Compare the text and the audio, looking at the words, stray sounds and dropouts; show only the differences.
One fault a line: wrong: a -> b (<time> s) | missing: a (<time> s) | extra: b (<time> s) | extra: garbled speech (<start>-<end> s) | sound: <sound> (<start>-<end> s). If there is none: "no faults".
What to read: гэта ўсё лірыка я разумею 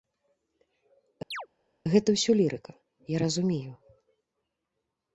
sound: chirp (1.3-1.5 s)